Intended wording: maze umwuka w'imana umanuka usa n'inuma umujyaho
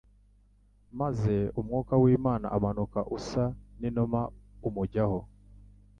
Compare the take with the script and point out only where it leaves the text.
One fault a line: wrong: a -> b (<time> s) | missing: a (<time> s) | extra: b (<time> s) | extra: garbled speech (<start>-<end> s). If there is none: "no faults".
no faults